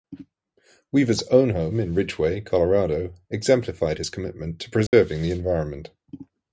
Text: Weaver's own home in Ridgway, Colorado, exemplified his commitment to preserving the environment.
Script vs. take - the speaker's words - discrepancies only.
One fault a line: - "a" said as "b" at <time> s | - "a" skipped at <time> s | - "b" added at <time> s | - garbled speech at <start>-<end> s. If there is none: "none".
none